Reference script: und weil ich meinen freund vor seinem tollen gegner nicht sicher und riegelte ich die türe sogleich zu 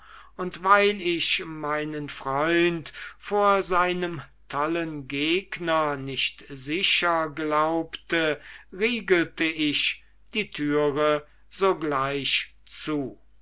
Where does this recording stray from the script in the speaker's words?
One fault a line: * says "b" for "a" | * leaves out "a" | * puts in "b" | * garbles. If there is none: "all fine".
* says "glaubte" for "und"